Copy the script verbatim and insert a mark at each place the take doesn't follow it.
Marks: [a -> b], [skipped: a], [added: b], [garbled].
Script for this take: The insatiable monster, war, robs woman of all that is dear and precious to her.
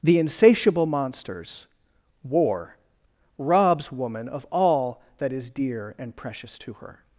The insatiable [monster, -> monsters] war, robs woman of all that is dear and precious to her.